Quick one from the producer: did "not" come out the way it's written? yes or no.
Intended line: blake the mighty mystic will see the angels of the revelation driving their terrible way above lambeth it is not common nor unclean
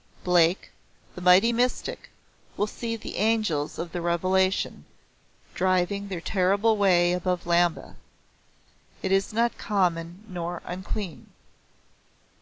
yes